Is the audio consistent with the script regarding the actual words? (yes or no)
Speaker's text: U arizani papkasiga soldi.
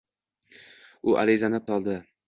no